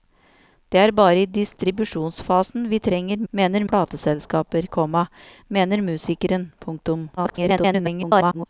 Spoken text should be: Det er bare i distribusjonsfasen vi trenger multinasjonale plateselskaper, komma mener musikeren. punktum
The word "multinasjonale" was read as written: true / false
false